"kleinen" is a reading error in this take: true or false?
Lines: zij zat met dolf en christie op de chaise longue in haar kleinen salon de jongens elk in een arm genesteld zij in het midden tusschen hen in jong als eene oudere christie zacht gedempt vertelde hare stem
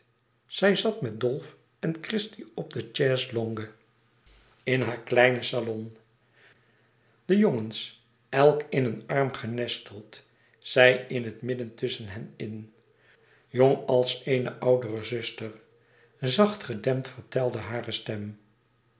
false